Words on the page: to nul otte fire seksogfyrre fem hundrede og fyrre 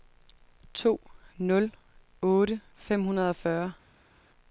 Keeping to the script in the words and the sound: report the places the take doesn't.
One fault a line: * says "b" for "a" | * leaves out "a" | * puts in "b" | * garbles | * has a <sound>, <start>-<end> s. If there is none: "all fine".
* leaves out "fire seksogfyrre"